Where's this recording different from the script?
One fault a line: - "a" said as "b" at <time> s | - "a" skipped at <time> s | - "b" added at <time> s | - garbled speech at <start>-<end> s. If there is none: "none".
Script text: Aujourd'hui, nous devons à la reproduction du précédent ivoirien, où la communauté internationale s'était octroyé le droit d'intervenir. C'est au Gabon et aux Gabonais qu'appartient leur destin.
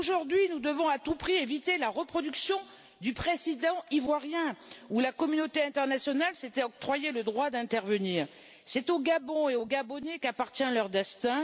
- "tout prix éviter" added at 1.0 s